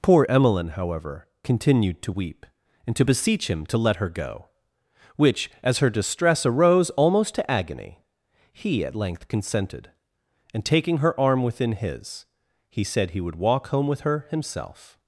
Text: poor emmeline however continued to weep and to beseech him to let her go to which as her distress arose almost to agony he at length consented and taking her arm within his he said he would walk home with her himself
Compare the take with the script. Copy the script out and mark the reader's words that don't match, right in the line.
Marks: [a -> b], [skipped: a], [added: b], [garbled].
poor emmeline however continued to weep and to beseech him to let her go [skipped: to] which as her distress arose almost to agony he at length consented and taking her arm within his he said he would walk home with her himself